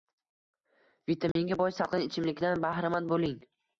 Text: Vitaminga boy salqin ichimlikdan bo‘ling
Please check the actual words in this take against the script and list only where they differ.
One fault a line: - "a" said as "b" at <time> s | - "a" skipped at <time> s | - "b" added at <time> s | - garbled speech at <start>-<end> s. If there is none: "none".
- "bahramand" added at 2.7 s